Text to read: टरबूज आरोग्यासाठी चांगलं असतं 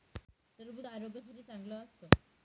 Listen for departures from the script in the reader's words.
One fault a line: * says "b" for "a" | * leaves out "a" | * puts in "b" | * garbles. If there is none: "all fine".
all fine